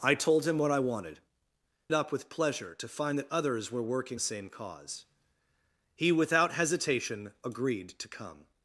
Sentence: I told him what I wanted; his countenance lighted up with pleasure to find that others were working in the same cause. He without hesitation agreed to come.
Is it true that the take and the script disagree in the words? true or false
true